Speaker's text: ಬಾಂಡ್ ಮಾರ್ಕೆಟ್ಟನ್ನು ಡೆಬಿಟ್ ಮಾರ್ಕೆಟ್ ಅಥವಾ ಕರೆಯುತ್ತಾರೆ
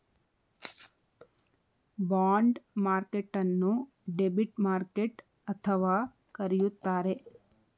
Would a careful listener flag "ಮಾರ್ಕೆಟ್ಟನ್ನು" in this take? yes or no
no